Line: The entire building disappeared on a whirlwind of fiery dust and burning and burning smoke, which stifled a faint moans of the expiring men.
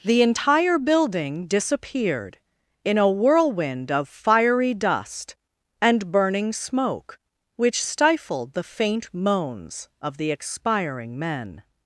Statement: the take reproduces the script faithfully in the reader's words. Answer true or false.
false